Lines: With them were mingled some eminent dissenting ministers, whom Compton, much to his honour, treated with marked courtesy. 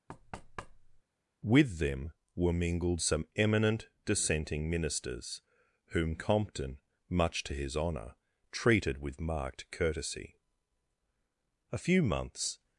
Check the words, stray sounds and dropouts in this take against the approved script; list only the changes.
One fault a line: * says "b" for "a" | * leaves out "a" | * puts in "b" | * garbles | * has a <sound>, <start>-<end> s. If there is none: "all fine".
* has a thud, 0.1-1.0 s
* puts in "A few months"